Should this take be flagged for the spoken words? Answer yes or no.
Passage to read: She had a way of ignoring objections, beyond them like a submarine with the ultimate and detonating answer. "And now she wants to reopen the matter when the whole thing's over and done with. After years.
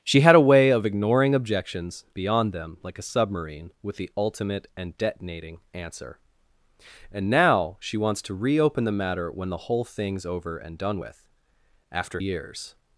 no